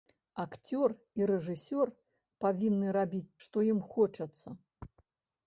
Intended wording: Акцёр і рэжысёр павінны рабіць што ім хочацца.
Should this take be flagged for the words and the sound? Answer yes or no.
no